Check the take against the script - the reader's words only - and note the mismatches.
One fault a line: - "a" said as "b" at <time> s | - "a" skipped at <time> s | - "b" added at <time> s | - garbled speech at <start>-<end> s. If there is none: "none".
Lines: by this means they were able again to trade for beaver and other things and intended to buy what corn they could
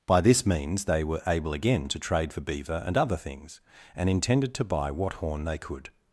- "corn" said as "horn" at 5.1 s